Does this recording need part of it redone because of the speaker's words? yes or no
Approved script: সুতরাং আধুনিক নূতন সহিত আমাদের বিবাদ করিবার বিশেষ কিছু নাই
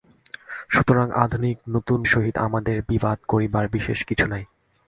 no